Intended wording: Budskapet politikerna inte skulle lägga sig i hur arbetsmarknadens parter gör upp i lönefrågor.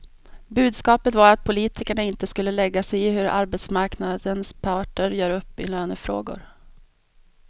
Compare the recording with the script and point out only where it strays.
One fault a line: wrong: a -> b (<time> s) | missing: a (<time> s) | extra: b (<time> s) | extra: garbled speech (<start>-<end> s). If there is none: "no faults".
extra: var att (1.1 s)